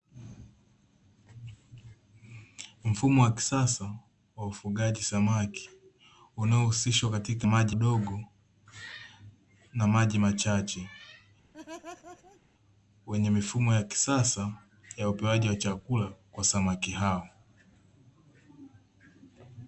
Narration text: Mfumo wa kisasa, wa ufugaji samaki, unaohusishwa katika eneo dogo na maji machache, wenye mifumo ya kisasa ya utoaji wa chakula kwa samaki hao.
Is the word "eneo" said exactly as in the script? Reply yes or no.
no